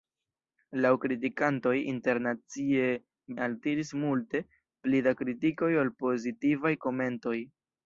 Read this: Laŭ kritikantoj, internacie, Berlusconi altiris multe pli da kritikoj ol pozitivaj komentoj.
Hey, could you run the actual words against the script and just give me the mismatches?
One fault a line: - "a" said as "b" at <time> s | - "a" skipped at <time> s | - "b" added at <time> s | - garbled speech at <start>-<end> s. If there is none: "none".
- "Berlusconi" skipped at 2.9 s